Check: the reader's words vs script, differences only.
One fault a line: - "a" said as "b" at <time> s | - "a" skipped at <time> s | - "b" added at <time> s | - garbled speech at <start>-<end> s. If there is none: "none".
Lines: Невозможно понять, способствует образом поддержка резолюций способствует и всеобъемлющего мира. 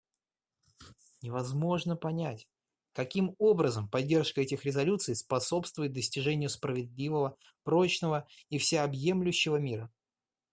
- "способствует" said as "каким" at 2.9 s
- "этих" added at 4.4 s
- "достижению справедливого прочного" added at 5.9 s